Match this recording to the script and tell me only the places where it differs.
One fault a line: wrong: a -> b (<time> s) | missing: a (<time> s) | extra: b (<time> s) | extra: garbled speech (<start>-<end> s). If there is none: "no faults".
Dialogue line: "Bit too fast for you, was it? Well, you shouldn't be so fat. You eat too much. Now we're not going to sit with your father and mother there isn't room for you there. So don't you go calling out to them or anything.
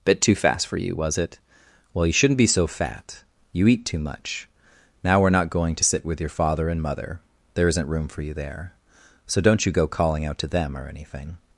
no faults